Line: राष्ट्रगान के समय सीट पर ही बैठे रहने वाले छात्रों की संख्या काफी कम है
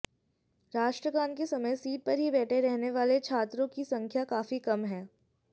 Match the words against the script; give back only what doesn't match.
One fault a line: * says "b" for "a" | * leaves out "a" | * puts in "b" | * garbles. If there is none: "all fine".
all fine